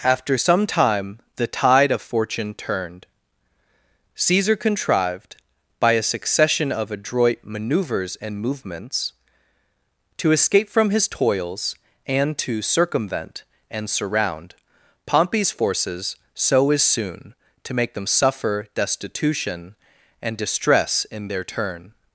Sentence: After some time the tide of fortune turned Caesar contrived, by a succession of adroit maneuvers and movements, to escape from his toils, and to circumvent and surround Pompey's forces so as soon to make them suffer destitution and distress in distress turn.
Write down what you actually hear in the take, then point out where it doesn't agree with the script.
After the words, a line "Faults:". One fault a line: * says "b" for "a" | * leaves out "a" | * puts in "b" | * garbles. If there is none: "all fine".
After some time the tide of fortune turned Caesar contrived, by a succession of adroit maneuvers and movements, to escape from his toils, and to circumvent and surround Pompey's forces so as soon to make them suffer destitution and distress in their turn.
Faults:
* says "their" for "distress"